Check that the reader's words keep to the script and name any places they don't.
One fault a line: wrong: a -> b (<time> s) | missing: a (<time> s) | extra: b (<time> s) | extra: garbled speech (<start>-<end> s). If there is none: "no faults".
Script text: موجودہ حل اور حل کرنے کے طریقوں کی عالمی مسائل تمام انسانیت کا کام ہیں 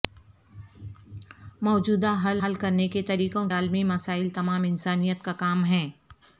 missing: اور (2.4 s)
missing: کی (3.5 s)